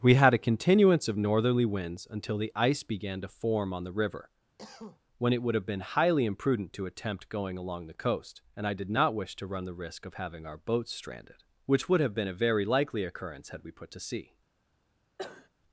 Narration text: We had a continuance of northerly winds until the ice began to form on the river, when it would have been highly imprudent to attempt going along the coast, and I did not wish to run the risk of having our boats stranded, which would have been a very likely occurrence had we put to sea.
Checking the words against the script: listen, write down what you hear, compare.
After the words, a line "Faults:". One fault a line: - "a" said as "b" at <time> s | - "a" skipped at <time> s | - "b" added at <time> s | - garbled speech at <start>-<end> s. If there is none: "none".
We had a continuance of northerly winds until the ice began to form on the river, when it would have been highly imprudent to attempt going along the coast, and I did not wish to run the risk of having our boats stranded, which would have been a very likely occurrence had we put to sea.
Faults:
none